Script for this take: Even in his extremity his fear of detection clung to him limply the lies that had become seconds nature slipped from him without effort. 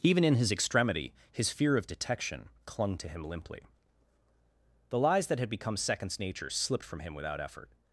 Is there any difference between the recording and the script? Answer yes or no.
no